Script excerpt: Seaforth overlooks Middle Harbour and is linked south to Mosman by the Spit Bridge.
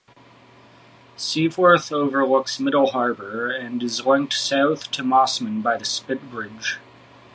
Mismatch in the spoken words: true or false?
false